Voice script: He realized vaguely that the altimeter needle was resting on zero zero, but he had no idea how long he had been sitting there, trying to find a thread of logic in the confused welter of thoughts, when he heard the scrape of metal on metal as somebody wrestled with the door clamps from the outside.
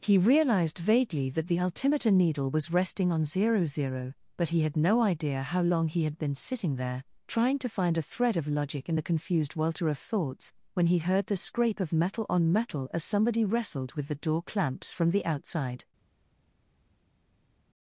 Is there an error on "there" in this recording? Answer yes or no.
no